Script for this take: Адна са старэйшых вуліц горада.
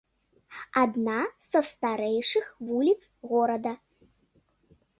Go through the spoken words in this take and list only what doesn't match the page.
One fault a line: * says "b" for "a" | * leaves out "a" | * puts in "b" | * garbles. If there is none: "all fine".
all fine